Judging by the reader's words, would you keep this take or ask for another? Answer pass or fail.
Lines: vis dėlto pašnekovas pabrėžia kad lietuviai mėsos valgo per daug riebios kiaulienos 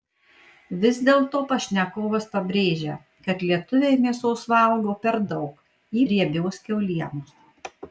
pass